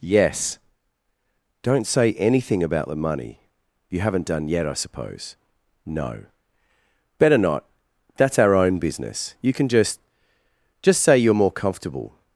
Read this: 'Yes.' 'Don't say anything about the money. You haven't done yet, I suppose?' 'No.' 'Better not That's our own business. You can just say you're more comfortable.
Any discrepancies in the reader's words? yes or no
yes